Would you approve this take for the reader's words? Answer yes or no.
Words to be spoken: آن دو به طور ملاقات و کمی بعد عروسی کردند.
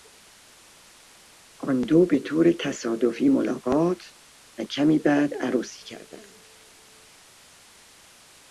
no